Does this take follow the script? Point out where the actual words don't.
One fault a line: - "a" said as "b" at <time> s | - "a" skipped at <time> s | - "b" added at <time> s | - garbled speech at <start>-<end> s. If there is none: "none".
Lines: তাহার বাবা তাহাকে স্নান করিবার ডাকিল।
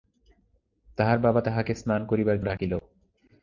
none